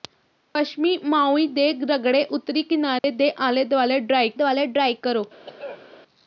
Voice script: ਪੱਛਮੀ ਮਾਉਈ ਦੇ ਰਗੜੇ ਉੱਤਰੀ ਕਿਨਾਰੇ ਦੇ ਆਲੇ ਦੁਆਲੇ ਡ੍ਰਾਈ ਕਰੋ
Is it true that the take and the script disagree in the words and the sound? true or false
true